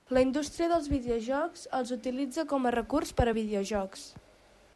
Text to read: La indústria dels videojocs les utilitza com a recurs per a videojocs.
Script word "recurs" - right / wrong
right